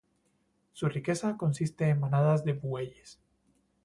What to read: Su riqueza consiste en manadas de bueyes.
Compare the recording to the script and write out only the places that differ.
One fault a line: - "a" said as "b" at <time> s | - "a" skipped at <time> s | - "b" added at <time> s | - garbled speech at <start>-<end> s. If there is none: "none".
none